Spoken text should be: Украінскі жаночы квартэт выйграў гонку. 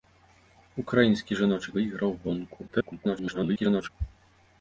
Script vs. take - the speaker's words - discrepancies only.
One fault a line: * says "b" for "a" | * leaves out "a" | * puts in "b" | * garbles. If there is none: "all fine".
* leaves out "квартэт"
* garbles